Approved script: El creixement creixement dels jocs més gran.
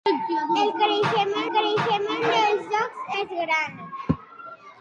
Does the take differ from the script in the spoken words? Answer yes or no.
no